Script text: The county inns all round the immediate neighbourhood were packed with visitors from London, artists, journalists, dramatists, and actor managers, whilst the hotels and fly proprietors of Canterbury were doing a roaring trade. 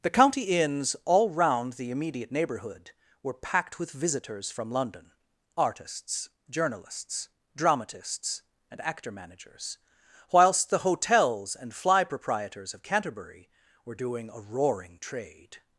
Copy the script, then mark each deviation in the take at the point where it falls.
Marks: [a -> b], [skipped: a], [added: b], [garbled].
The county inns all round the immediate neighbourhood were packed with visitors from London, artists, journalists, dramatists, and actor managers, whilst the hotels and fly proprietors of Canterbury were doing a roaring trade.